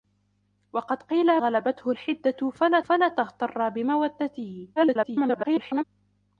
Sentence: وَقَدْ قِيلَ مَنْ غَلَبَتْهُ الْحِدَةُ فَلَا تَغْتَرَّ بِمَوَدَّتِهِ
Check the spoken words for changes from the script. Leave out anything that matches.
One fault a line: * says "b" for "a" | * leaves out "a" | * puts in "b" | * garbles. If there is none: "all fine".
* leaves out "مَنْ"
* puts in "فَلَا"
* garbles